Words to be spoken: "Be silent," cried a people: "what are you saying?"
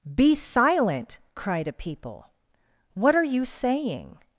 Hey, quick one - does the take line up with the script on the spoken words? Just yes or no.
yes